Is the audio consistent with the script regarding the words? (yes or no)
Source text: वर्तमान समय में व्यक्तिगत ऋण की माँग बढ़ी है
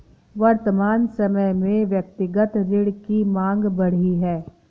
yes